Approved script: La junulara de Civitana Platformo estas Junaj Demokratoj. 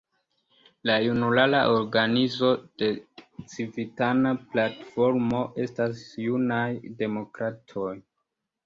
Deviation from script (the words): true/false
true